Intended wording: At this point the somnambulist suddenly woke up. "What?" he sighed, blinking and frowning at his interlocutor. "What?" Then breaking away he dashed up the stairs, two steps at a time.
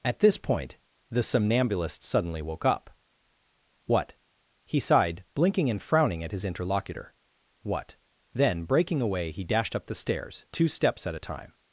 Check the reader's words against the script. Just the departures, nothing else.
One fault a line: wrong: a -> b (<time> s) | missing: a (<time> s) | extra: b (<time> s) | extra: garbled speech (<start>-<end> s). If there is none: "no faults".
no faults